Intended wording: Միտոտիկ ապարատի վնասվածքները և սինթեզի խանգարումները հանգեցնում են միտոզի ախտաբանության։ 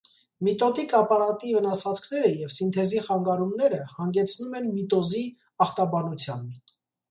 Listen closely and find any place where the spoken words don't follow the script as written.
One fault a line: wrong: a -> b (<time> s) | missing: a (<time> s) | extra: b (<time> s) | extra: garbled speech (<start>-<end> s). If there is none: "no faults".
no faults